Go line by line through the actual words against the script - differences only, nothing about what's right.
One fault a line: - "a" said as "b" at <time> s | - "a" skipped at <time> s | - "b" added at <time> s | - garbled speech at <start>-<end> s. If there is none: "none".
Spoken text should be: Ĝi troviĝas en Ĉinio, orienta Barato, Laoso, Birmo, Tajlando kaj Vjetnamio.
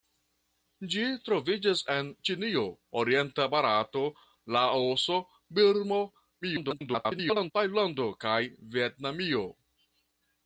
- garbled speech at 6.4-7.5 s